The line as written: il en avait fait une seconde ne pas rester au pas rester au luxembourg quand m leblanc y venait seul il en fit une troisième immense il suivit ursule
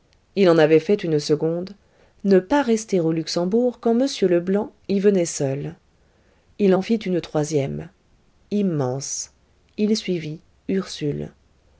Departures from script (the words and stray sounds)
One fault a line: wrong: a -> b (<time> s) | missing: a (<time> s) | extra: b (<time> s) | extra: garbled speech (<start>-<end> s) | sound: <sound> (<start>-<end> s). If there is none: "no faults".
missing: pas rester au (3.1 s)